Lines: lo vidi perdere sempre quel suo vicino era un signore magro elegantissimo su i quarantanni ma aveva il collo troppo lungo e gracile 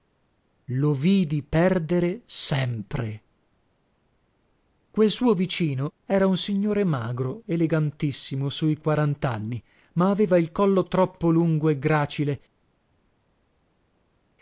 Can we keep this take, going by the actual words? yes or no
yes